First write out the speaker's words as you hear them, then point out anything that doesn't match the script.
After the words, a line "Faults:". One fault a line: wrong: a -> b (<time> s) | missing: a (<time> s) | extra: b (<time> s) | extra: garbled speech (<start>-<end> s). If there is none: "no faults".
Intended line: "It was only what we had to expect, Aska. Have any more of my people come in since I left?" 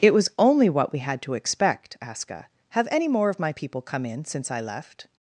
"It was only what we had to expect, Aska. Have any more of my people come in since I left?"
Faults:
no faults